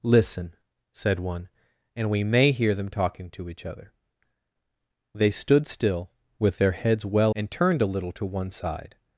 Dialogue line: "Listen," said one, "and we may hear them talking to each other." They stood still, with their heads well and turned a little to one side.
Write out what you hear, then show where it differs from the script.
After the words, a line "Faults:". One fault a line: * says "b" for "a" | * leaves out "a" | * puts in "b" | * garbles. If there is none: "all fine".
"Listen," said one, "and we may hear them talking to each other." They stood still, with their heads well and turned a little to one side.
Faults:
all fine